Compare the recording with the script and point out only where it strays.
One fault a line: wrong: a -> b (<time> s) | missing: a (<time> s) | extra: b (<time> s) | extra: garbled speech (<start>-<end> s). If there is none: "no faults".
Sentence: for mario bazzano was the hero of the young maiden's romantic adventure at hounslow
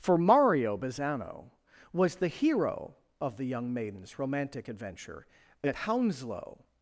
no faults